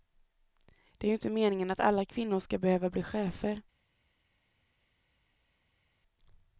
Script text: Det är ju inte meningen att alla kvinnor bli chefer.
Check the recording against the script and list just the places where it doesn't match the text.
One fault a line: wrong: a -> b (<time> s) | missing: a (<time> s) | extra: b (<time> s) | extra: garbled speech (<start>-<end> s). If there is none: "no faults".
extra: ska behöva (2.4 s)